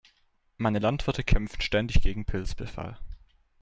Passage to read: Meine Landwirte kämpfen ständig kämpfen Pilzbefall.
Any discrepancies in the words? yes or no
yes